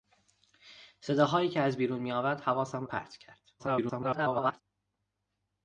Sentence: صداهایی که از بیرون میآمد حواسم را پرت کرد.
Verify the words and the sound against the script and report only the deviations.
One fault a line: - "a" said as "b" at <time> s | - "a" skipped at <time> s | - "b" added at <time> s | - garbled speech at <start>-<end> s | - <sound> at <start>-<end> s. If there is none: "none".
- "را" skipped at 2.9 s
- garbled speech at 3.6-4.6 s